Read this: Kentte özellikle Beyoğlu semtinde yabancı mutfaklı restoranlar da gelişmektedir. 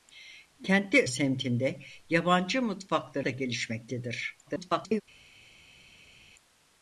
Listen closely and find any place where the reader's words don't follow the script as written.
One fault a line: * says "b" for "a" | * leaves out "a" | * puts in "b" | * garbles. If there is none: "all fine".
* leaves out "özellikle Beyoğlu"
* leaves out "restoranlar"
* garbles